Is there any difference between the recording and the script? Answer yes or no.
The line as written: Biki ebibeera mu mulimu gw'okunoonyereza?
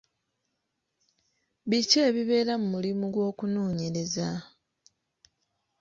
no